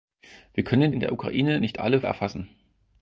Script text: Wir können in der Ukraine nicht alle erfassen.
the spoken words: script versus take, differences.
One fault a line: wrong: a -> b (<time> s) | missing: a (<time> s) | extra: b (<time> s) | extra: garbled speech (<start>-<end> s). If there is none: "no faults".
no faults